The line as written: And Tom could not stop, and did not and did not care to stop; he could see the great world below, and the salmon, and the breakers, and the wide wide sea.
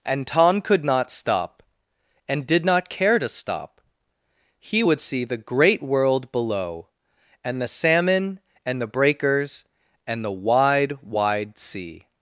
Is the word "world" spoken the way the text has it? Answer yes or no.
yes